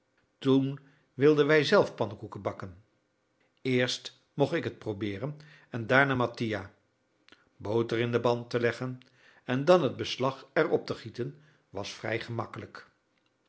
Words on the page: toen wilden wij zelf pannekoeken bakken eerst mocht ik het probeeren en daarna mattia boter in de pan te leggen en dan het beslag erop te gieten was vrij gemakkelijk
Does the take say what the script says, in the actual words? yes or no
yes